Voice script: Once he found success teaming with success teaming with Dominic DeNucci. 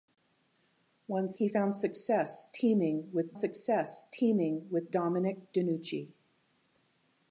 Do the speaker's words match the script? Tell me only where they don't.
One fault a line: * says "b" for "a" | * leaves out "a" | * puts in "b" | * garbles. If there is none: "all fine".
all fine